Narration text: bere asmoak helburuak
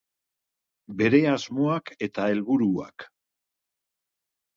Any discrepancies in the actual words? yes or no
yes